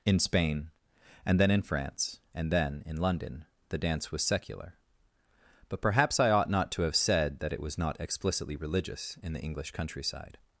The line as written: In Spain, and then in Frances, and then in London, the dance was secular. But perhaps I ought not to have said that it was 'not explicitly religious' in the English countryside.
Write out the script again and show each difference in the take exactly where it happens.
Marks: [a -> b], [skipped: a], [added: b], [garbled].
In Spain, and then in [Frances, -> France] and then in London, the dance was secular. But perhaps I ought not to have said that it was 'not explicitly religious' in the English countryside.